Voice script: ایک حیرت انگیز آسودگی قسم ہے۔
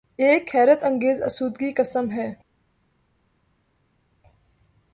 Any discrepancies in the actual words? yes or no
no